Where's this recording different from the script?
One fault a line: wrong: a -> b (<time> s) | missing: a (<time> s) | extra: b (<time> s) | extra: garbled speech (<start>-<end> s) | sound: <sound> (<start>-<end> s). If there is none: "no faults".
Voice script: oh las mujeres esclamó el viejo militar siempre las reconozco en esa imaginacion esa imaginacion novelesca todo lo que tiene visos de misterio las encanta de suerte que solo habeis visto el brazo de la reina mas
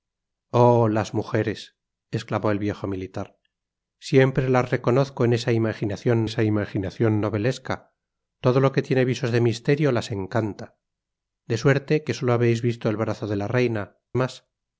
no faults